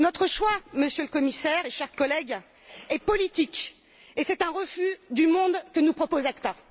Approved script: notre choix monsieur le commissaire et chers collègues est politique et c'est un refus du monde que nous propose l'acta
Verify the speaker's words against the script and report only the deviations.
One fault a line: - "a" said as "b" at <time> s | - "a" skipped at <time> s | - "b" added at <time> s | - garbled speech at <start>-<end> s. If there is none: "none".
none